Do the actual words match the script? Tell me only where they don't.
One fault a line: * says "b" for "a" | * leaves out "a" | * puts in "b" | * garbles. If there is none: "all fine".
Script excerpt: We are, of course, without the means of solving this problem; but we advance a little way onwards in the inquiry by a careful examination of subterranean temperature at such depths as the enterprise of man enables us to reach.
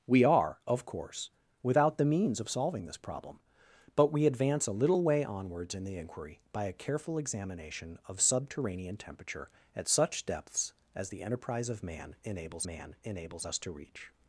* puts in "man enables"